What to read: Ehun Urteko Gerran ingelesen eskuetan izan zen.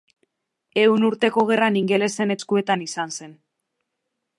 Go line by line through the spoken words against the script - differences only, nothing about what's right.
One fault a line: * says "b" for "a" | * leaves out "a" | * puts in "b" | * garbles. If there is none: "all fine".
all fine